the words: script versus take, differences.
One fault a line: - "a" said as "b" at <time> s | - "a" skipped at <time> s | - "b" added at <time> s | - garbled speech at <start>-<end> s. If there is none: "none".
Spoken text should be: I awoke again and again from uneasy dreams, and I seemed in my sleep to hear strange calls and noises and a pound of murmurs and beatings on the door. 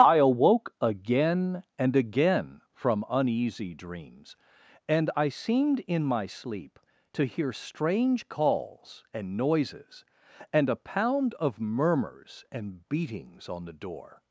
none